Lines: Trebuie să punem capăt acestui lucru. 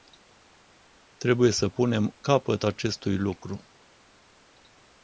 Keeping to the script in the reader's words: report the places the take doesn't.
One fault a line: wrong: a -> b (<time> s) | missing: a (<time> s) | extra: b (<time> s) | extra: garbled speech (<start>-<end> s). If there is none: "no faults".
no faults